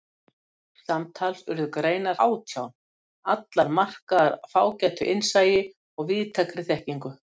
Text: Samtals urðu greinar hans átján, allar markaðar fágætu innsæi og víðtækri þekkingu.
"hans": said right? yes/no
no